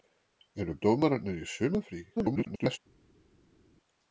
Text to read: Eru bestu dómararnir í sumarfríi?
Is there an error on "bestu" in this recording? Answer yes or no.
yes